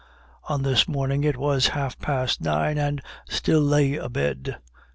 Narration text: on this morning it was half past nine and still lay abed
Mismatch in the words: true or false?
false